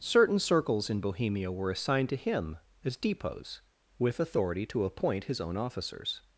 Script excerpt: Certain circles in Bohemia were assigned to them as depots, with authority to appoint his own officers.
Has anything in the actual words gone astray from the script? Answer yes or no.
yes